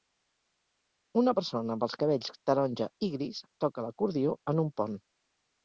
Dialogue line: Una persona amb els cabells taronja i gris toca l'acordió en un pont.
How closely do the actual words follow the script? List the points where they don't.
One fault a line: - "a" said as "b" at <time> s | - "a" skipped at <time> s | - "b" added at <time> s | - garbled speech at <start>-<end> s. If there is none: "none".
none